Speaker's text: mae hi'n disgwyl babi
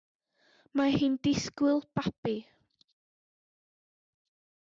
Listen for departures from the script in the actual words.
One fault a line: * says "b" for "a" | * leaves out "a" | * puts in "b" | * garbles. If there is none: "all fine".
all fine